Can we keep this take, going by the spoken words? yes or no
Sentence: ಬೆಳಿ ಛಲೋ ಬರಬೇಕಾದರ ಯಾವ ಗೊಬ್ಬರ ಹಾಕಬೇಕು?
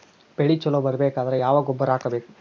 yes